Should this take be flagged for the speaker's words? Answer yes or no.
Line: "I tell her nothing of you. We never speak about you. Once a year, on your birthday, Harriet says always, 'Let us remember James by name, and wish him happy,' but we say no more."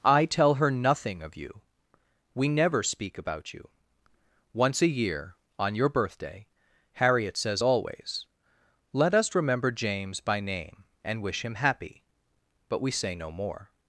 no